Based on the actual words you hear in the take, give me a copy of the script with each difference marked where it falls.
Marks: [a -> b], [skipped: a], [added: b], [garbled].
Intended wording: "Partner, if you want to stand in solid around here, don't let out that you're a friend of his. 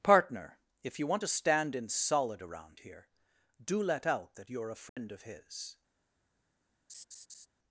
"Partner, if you want to stand in solid around here, [don't -> do] let out that you're a friend of his.